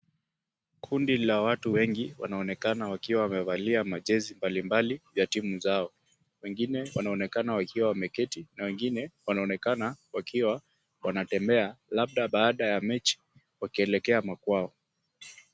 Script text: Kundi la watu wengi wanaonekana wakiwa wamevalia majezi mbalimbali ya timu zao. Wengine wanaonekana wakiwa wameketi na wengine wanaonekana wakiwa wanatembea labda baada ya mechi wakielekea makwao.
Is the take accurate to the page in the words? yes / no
yes